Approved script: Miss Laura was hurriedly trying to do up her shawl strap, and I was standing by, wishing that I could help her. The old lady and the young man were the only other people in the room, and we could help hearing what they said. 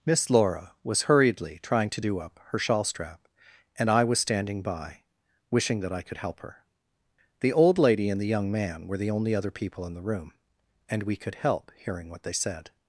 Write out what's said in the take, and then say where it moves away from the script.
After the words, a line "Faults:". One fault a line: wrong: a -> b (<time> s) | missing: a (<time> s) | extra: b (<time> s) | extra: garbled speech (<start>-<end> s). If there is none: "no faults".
Miss Laura was hurriedly trying to do up her shawl strap, and I was standing by, wishing that I could help her. The old lady and the young man were the only other people in the room, and we could help hearing what they said.
Faults:
no faults